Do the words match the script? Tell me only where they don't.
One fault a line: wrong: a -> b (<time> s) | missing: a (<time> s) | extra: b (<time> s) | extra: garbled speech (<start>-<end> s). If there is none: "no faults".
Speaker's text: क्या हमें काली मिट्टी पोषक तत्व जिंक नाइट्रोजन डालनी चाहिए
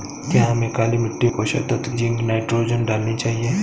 no faults